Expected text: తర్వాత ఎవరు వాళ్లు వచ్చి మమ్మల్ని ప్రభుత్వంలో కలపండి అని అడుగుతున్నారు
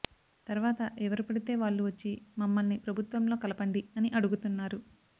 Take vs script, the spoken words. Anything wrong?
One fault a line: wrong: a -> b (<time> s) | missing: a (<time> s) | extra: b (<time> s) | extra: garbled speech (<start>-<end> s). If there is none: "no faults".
extra: పడితే (1.2 s)